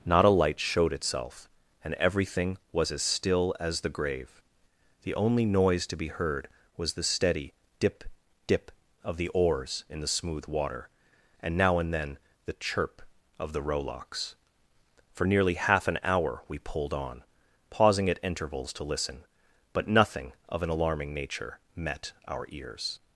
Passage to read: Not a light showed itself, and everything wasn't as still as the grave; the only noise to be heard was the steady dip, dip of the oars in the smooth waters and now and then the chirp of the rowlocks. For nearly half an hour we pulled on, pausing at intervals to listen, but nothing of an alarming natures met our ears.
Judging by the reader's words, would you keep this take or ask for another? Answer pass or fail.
fail